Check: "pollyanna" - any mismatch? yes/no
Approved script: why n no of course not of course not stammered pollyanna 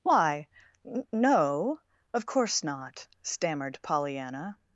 no